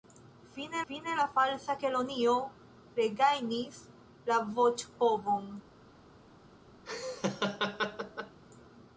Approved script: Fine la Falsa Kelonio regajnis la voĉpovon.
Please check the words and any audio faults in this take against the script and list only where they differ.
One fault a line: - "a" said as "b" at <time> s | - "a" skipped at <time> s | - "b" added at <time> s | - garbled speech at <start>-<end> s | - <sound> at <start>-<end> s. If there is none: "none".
- "fine" added at 0.9 s
- laugh at 6.8-8.4 s